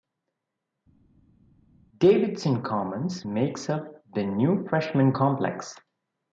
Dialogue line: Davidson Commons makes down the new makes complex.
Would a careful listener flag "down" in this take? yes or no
yes